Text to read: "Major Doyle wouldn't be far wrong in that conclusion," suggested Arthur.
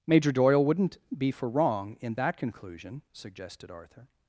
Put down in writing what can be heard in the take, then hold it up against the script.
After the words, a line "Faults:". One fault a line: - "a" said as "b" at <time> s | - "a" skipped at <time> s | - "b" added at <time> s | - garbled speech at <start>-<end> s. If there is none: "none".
"Major Doyle wouldn't be for wrong in that conclusion," suggested Arthur.
Faults:
- "far" said as "for" at 1.3 s